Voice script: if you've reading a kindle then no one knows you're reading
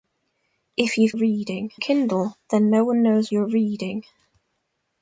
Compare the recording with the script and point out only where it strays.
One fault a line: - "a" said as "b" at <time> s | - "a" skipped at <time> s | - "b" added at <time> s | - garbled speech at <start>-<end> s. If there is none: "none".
none